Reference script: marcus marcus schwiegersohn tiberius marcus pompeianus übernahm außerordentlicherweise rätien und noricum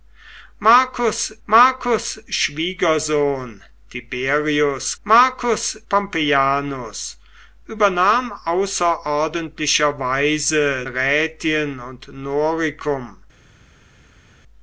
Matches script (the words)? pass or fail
pass